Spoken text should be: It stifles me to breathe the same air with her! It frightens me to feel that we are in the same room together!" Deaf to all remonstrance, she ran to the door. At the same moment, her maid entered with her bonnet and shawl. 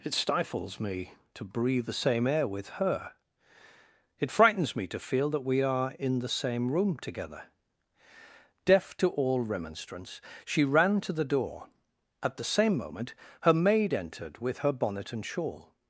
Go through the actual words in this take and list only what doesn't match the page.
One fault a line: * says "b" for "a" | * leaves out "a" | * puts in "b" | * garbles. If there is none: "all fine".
all fine